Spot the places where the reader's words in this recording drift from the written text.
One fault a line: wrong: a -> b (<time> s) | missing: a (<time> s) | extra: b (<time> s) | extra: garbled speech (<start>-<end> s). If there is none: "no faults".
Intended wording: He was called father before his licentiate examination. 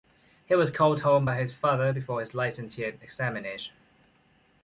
extra: home by his (1.0 s)